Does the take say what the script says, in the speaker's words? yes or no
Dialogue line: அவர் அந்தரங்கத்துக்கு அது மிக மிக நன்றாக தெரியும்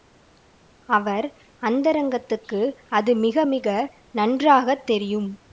yes